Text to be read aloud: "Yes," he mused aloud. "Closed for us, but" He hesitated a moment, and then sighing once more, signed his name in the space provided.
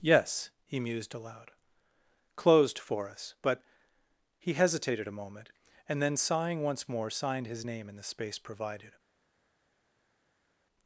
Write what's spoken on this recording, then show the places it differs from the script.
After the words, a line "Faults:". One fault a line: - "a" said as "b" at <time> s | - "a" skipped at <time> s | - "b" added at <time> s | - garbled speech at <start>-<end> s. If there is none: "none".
"Yes," he mused aloud. "Closed for us, but" He hesitated a moment, and then sighing once more, signed his name in the space provided.
Faults:
none